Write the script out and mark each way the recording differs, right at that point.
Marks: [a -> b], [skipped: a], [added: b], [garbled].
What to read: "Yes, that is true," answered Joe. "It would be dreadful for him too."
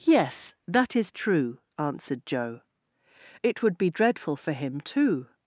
"Yes, that is true," answered Joe. "It would be dreadful for him too."